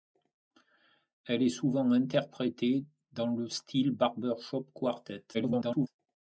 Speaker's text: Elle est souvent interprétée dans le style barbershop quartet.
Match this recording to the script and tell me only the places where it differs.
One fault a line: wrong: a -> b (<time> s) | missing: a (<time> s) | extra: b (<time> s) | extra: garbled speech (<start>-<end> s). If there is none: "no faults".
extra: garbled speech (5.3-5.9 s)